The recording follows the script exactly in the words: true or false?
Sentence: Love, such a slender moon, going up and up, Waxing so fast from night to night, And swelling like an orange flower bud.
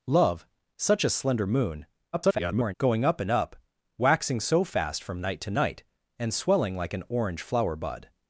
false